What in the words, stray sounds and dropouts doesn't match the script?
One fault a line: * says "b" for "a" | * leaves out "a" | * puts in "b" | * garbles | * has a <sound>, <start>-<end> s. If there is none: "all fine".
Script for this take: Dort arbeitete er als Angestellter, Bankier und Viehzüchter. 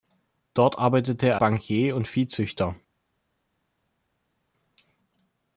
* leaves out "als Angestellter"